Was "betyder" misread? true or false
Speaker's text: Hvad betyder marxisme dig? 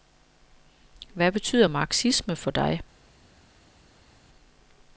false